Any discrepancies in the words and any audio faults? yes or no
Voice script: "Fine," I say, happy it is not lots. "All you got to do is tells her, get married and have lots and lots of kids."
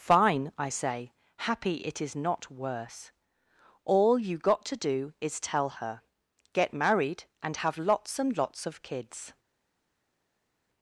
yes